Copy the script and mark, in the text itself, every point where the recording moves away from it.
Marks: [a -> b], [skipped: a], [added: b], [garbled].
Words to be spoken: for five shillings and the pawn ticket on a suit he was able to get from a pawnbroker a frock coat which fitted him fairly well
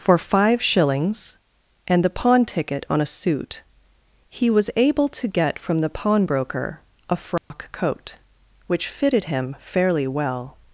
for five shillings and the pawn ticket on a suit he was able to get from [a -> the] pawnbroker a frock coat which fitted him fairly well